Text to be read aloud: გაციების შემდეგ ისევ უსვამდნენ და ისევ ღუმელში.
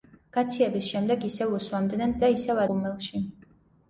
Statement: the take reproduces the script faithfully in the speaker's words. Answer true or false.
true